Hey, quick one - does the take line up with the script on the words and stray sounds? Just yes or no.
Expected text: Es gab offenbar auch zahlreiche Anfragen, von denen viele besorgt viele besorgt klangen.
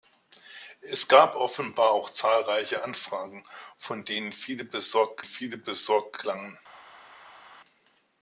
yes